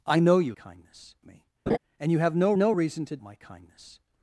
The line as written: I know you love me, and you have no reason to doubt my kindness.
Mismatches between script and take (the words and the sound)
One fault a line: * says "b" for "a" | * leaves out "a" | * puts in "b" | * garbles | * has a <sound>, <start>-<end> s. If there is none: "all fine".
* says "kindness" for "love"
* has a laugh, 1.7-1.8 s
* puts in "no"
* leaves out "doubt"